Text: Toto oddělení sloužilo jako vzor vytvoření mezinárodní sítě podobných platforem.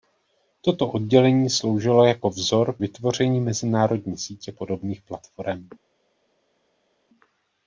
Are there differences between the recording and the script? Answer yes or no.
no